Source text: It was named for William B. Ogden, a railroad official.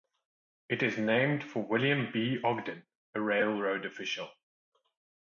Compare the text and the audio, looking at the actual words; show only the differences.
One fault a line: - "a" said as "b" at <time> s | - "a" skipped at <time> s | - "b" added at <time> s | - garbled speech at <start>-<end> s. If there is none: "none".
- "was" said as "is" at 0.8 s